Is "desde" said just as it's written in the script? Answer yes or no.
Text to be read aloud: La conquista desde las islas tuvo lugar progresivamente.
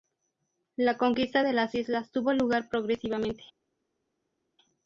no